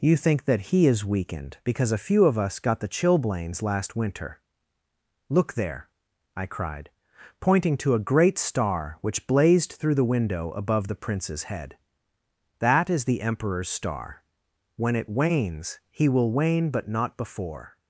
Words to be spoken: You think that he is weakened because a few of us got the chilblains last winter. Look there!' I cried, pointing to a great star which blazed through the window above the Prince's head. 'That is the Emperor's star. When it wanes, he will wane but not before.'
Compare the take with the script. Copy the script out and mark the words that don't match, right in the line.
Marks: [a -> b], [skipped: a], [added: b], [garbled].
You think that he is weakened because a few of us got the chilblains last winter. Look there!' I cried, pointing to a great star which blazed through the window above the Prince's head. 'That is the Emperor's star. When it wanes, he will wane but not before.'